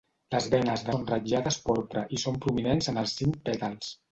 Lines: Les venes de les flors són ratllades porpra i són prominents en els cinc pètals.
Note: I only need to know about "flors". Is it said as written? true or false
false